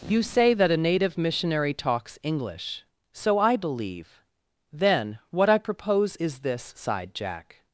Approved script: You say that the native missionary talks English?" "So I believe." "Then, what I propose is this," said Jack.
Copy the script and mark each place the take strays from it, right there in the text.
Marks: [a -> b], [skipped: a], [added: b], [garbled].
You say that [the -> a] native missionary talks English?" "So I believe." "Then, what I propose is this," [said -> sighed] Jack.